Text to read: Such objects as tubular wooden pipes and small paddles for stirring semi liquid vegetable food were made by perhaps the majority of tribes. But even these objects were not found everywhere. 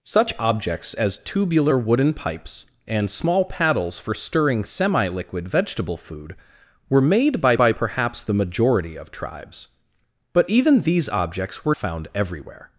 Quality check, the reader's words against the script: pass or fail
fail